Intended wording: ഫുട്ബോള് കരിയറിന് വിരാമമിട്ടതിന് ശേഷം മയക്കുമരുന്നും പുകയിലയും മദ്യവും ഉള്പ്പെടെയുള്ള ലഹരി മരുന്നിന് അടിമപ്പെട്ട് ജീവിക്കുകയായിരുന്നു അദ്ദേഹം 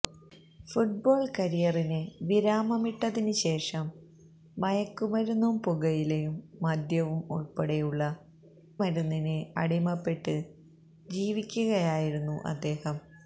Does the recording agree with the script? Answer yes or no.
no